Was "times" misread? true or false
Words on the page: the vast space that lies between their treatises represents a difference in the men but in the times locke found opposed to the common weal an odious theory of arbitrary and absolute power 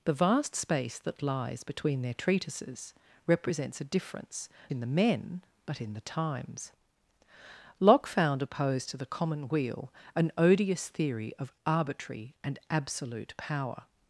false